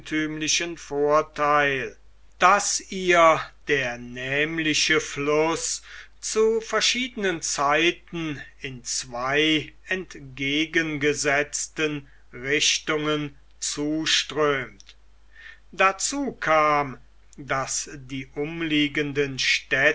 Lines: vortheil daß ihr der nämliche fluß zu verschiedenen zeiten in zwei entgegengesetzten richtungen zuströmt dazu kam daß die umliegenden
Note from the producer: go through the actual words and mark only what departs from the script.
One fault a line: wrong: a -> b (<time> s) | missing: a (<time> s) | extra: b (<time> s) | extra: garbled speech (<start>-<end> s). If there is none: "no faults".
no faults